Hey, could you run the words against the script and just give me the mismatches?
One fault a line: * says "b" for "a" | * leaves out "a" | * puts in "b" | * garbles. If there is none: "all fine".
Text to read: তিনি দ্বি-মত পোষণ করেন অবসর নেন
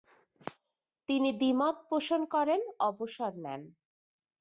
all fine